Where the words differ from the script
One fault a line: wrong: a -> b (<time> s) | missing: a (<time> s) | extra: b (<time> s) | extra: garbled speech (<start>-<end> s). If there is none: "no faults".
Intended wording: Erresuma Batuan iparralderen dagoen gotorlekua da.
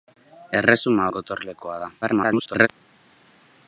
missing: Batuan iparralderen dagoen (1.1 s)
extra: garbled speech (2.0-2.7 s)